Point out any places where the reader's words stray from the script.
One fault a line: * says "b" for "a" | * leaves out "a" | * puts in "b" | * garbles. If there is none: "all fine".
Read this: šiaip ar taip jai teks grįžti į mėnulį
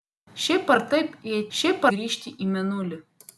* says "šiaip" for "teks"